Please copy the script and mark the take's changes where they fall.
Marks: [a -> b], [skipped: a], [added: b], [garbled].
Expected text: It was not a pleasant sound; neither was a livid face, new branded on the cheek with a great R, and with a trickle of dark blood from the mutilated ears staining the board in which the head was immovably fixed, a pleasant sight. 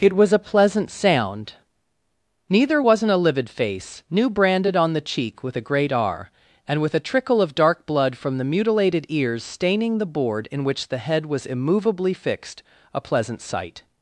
It was [skipped: not] a pleasant sound; neither [was -> wasn't] a livid face, new branded on the cheek with a great R, and with a trickle of dark blood from the mutilated ears staining the board in which the head was immovably fixed, a pleasant sight.